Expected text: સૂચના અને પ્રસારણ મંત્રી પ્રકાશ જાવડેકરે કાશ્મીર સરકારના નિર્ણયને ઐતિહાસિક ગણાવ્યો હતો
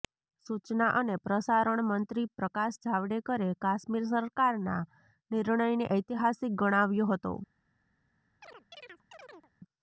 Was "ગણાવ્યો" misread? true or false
false